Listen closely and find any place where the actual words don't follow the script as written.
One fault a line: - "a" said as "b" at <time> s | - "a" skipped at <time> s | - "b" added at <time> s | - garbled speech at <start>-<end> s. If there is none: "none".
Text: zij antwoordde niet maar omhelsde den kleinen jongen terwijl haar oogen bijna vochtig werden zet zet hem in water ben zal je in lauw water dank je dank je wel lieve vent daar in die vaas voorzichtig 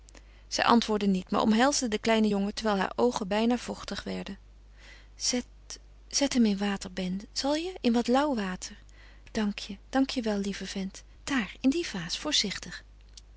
- "wat" added at 7.9 s